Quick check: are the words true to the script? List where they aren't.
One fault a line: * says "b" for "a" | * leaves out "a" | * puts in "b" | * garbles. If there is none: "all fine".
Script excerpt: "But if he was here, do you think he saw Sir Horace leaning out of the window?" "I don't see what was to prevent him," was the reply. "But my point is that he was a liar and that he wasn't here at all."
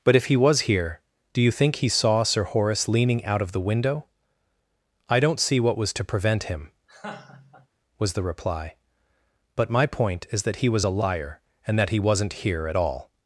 all fine